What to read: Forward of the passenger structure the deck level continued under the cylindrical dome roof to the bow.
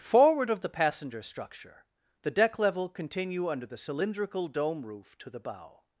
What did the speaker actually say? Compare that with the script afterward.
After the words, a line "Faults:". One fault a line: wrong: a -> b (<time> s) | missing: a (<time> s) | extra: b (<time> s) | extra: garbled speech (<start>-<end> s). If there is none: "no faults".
Forward of the passenger structure the deck level continue under the cylindrical dome roof to the bow.
Faults:
wrong: continued -> continue (2.9 s)